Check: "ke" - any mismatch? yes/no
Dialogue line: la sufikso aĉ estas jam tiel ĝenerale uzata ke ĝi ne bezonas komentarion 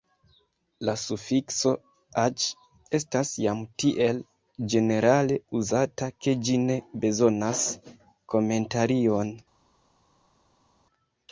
no